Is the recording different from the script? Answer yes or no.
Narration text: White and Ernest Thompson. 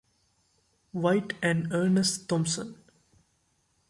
no